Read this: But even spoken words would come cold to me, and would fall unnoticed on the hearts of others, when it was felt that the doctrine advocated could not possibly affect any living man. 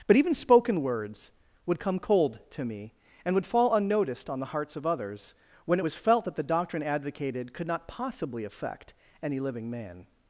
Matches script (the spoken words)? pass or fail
pass